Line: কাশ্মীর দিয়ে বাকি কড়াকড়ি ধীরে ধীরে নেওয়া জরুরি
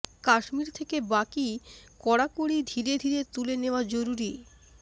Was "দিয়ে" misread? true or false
true